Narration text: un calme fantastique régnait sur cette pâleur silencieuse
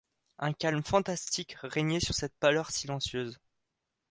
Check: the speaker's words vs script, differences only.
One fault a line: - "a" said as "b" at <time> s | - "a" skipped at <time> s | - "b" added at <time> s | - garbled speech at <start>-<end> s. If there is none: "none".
none